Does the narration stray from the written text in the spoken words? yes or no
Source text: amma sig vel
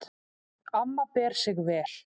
yes